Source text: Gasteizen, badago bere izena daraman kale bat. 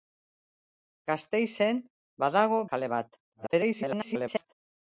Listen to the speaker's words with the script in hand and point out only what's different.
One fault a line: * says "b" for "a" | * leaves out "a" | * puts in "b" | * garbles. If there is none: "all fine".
* leaves out "bere izena daraman"
* garbles